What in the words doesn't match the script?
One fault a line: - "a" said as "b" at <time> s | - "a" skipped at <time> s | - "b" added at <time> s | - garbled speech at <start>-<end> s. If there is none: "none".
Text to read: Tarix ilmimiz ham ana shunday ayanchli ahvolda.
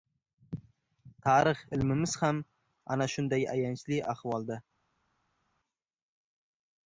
none